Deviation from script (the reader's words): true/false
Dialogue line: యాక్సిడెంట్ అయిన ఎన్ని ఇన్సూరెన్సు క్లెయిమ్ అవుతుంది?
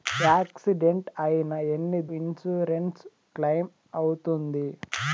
false